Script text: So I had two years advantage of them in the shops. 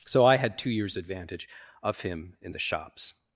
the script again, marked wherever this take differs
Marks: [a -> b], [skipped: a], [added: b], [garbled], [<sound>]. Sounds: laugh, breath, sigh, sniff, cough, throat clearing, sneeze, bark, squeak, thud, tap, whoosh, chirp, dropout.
So I had two years advantage of [them -> him] in the shops.